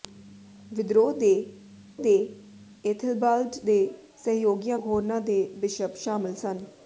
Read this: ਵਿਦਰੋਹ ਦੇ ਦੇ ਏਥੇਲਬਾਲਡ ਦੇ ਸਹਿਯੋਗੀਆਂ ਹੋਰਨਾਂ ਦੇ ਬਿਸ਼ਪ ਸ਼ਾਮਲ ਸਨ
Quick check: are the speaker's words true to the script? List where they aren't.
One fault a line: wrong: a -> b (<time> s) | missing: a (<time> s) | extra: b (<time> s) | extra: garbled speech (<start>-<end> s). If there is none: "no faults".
no faults